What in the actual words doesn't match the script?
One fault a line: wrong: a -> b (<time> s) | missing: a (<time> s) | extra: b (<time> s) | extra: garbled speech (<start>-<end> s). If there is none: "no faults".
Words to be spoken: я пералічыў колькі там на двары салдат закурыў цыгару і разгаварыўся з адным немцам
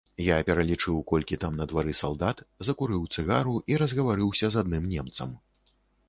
no faults